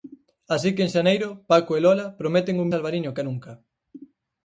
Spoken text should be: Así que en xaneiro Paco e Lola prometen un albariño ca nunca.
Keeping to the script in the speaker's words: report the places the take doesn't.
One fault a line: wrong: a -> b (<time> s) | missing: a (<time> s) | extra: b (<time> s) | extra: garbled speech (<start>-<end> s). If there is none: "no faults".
no faults